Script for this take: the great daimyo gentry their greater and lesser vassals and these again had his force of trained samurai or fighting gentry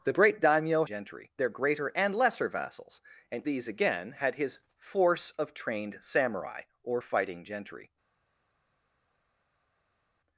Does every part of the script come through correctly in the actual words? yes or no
yes